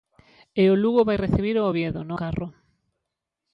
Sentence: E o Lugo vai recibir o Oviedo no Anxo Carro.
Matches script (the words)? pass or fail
fail